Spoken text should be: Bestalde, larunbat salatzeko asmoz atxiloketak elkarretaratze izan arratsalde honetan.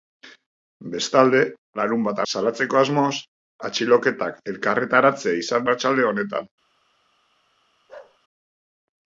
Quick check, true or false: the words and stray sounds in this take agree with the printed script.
false